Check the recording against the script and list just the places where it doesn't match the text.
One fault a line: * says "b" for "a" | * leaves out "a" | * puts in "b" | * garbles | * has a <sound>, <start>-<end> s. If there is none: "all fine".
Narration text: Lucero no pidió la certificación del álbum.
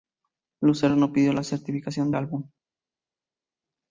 * leaves out "del"